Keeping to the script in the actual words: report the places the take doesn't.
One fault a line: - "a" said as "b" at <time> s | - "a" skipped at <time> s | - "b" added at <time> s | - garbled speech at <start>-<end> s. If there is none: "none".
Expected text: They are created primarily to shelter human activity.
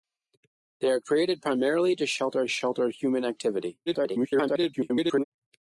- "shelter" added at 2.5 s
- garbled speech at 3.9-5.2 s